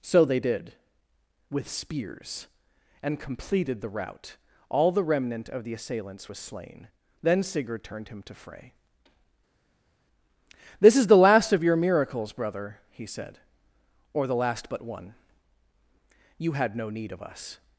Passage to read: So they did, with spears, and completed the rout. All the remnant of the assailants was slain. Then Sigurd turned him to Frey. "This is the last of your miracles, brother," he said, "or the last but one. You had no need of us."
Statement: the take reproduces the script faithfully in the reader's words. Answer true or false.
true